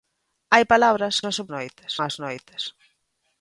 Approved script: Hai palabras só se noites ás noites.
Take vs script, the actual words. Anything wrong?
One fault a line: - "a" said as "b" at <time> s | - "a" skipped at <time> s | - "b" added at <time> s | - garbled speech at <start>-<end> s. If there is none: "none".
none